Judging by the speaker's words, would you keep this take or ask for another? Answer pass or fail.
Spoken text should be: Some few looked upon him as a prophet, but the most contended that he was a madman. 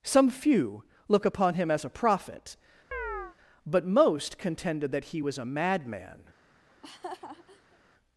fail